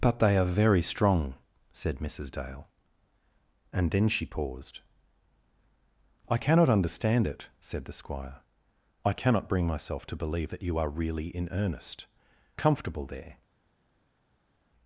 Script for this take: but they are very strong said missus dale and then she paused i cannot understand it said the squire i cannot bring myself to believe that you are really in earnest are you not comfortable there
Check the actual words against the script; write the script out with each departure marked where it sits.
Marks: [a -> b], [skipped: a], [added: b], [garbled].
but they are very strong said missus dale and then she paused i cannot understand it said the squire i cannot bring myself to believe that you are really in earnest [skipped: are you not] comfortable there